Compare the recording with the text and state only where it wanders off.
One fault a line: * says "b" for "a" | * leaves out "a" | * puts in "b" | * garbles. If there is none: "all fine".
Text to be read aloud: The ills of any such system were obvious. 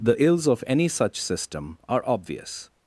* says "are" for "were"